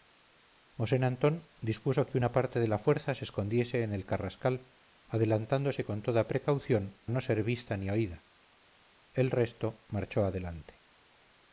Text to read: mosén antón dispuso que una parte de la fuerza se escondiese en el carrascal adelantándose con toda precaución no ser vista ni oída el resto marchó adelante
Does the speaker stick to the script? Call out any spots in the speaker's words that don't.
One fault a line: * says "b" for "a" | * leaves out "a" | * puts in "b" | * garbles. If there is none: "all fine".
all fine